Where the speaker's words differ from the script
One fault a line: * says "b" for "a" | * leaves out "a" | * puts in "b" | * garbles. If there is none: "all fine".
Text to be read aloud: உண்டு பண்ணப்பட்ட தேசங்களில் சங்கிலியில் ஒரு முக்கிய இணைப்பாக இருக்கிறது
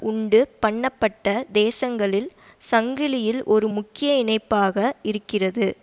all fine